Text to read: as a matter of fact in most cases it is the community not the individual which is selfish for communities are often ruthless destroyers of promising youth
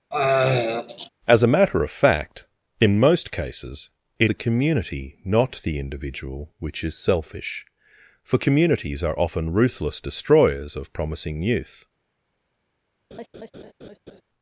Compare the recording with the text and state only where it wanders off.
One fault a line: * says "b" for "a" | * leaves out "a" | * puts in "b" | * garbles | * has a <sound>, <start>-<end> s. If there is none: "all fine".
* has a throat clearing, 0.1-1.1 s
* leaves out "is"
* has a laugh, 13.1-14.2 s